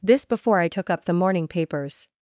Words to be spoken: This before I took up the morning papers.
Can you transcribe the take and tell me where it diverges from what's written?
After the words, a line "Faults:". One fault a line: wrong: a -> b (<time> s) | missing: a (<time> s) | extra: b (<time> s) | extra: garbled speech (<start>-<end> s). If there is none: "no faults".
This before I took up the morning papers.
Faults:
no faults